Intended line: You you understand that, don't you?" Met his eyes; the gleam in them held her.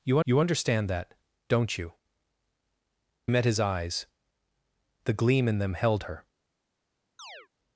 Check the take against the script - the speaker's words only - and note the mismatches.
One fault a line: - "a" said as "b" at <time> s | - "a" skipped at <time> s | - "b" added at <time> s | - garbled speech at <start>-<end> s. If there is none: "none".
none